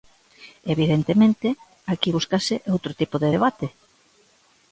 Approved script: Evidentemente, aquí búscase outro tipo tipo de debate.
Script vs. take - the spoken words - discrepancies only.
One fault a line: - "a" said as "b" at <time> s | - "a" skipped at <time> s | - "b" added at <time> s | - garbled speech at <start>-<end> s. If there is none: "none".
- "tipo" skipped at 3.2 s